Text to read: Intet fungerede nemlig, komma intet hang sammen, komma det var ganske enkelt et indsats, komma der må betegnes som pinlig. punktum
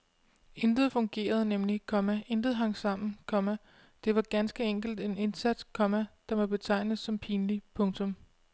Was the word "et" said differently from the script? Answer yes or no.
yes